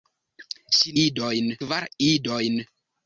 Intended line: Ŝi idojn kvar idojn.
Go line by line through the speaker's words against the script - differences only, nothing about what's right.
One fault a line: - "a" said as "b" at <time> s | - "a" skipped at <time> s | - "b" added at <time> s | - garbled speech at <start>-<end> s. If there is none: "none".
none